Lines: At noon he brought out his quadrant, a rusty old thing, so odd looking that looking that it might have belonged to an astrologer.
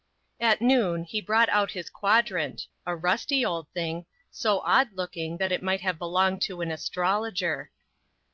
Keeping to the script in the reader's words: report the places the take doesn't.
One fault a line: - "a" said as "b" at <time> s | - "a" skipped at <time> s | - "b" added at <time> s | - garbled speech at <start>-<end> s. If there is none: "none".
- "looking that" skipped at 5.5 s